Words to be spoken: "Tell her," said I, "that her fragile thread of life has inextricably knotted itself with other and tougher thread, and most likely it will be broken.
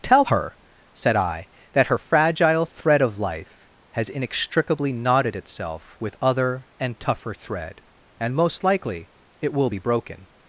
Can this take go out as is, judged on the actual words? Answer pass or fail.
pass